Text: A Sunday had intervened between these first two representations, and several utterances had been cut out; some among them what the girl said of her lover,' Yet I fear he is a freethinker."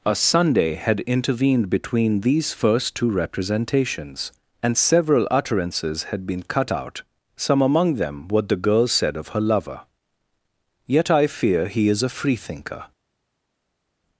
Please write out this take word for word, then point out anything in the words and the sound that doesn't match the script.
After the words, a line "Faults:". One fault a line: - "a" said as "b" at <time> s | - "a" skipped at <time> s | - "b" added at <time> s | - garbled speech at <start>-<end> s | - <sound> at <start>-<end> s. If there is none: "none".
A Sunday had intervened between these first two representations, and several utterances had been cut out; some among them what the girl said of her lover,' Yet I fear he is a freethinker."
Faults:
none